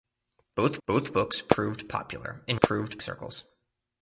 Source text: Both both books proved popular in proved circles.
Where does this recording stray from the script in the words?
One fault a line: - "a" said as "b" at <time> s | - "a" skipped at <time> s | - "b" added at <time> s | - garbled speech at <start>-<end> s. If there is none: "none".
none